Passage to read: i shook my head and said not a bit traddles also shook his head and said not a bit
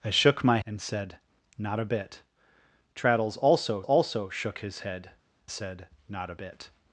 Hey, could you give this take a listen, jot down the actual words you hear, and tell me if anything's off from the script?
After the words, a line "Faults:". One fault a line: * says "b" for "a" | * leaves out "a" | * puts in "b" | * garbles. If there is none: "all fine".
i shook my and said not a bit traddles also also shook his head said not a bit
Faults:
* leaves out "head"
* puts in "also"
* leaves out "and"